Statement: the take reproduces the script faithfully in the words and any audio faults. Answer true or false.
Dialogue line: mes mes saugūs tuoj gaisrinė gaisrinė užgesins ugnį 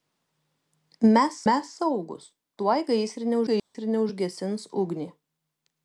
false